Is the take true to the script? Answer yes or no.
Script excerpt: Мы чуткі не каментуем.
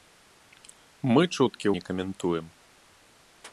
yes